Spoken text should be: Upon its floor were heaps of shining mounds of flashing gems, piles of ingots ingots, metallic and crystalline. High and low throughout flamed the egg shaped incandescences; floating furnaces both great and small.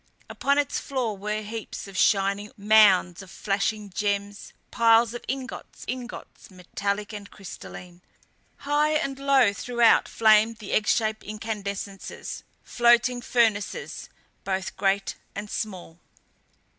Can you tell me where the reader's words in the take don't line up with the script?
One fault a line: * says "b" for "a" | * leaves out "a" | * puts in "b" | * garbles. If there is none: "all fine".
all fine